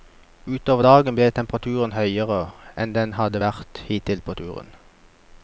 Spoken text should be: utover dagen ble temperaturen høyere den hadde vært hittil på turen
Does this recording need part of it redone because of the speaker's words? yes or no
yes